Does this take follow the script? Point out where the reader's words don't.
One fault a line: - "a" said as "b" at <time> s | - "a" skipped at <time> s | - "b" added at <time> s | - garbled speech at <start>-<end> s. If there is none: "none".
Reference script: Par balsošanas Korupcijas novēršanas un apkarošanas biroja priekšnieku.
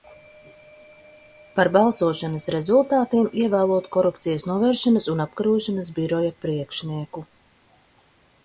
- "rezultātiem ievēlot" added at 2.5 s